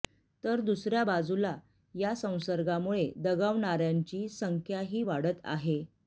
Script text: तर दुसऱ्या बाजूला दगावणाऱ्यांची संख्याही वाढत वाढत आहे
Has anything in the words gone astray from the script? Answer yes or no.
yes